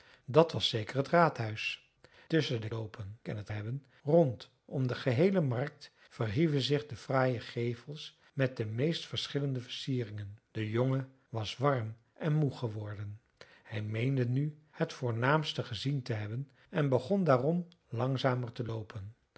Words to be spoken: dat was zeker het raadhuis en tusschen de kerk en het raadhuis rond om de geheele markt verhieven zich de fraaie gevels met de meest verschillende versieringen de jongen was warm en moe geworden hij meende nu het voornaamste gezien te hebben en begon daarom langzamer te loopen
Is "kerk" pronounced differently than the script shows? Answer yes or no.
yes